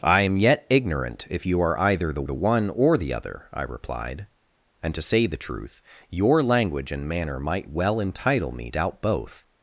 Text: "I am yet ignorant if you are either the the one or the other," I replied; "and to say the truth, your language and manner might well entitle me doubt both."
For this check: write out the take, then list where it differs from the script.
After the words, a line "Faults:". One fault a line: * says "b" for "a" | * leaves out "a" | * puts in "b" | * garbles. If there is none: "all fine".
"I am yet ignorant if you are either the the one or the other," I replied; "and to say the truth, your language and manner might well entitle me doubt both."
Faults:
all fine